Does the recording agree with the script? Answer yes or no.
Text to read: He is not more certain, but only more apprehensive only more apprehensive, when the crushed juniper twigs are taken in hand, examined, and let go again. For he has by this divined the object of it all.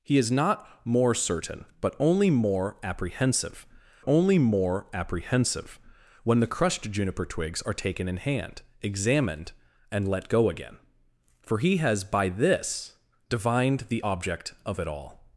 yes